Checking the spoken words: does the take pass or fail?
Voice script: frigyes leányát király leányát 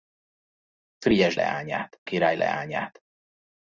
pass